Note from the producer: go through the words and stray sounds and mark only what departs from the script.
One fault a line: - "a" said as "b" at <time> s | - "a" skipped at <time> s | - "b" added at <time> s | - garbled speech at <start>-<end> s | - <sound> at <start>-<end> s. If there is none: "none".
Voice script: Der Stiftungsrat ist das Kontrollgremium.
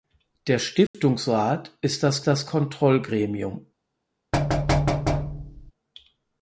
- dropout at 0.9-0.9 s
- "das" added at 2.3 s
- thud at 4.3-5.7 s